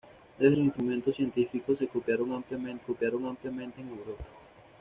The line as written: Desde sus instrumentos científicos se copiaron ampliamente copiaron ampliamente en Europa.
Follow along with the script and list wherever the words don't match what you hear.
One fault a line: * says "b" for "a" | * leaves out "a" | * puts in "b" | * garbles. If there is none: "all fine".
all fine